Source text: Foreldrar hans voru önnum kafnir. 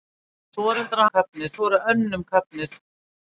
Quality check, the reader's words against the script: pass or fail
fail